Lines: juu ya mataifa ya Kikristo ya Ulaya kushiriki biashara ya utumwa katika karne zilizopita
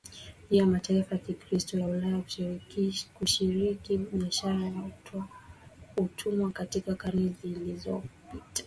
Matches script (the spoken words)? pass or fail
pass